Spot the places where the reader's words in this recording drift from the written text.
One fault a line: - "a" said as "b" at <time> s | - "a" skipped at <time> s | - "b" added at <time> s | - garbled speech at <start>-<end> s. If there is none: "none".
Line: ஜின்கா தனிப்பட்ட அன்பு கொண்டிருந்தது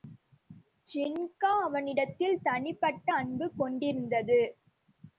- "அவனிடத்தில்" added at 1.6 s